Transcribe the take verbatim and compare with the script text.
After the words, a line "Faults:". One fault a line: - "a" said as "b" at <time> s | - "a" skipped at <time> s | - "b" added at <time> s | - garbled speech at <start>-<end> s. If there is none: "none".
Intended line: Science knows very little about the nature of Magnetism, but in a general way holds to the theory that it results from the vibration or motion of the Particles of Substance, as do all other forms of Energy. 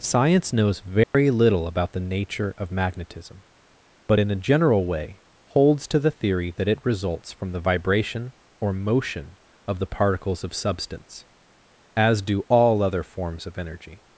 Science knows very little about the nature of Magnetism, but in a general way holds to the theory that it results from the vibration or motion of the Particles of Substance, as do all other forms of Energy.
Faults:
none